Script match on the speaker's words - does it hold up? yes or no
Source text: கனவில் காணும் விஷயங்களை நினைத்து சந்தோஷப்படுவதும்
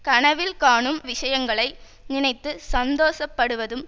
yes